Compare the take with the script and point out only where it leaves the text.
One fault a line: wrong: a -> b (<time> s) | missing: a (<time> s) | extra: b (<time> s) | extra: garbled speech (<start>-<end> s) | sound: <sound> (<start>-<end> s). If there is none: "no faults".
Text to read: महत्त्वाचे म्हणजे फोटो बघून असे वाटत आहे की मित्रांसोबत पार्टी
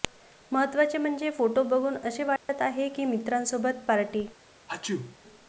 sound: dropout (2.4-2.5 s)
sound: sneeze (4.7-5.2 s)